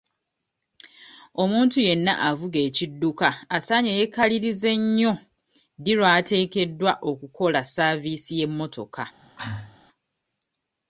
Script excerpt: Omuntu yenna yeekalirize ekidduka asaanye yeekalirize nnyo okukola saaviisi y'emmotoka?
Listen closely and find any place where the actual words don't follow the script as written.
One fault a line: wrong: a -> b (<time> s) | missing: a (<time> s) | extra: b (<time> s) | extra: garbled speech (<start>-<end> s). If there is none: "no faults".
wrong: yeekalirize -> avuga (2.3 s)
extra: ddi lw'ateekeddwa (5.8 s)